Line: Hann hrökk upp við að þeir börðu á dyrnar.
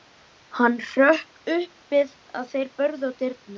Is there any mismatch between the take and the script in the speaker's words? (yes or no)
no